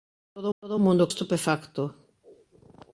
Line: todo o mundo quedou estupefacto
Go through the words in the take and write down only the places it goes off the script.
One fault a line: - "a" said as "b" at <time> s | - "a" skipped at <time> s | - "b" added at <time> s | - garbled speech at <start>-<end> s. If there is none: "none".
- "todo" added at 0.6 s
- "quedou" skipped at 1.1 s